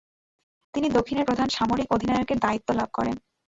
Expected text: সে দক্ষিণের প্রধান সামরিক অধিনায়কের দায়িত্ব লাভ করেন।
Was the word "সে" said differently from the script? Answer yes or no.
yes